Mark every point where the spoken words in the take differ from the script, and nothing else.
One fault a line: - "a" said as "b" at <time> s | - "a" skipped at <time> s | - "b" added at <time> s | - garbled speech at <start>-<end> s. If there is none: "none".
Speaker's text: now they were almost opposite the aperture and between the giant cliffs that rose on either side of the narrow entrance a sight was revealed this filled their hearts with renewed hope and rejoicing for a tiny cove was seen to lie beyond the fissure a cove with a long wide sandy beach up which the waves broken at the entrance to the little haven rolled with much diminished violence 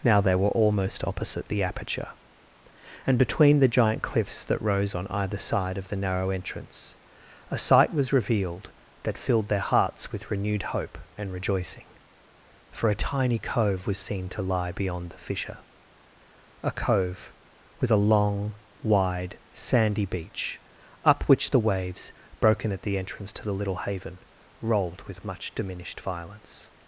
- "this" said as "that" at 9.0 s